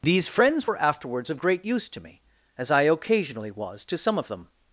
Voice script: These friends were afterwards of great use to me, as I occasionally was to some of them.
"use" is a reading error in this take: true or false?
false